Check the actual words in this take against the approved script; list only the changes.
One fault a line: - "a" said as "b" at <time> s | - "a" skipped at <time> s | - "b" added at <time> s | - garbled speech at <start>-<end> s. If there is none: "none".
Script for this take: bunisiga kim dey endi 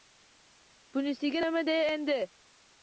- "kim" said as "nima" at 1.4 s